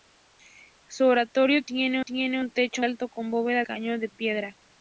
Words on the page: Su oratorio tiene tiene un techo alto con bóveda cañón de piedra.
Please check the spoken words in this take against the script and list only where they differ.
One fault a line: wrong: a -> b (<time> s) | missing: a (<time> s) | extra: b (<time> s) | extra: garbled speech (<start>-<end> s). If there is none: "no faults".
no faults